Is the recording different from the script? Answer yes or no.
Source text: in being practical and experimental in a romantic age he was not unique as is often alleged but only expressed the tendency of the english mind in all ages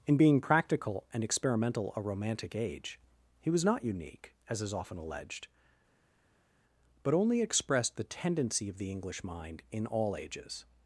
yes